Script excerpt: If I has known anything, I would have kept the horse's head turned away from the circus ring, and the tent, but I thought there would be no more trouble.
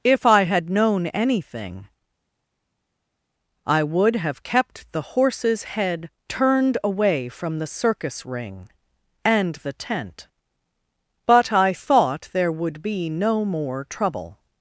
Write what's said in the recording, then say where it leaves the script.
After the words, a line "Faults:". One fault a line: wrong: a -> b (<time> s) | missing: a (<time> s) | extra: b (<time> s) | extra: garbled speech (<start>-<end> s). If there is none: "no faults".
If I had known anything, I would have kept the horse's head turned away from the circus ring, and the tent, but I thought there would be no more trouble.
Faults:
wrong: has -> had (0.5 s)